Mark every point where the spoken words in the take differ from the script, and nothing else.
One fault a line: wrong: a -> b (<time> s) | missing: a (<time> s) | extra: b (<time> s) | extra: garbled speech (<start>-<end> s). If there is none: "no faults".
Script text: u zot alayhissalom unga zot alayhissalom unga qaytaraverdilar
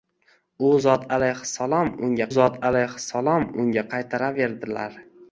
no faults